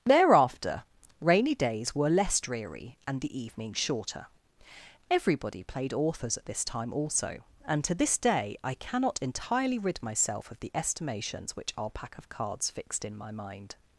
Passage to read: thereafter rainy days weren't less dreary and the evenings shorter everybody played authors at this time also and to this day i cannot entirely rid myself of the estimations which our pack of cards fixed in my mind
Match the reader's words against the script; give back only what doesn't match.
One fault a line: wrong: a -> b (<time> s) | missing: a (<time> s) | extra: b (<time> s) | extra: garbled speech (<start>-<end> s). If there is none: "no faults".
wrong: weren't -> were (1.9 s)